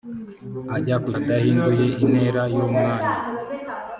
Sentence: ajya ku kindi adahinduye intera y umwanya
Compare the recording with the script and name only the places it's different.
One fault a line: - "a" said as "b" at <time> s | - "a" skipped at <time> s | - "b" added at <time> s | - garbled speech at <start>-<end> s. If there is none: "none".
- "kindi" skipped at 1.1 s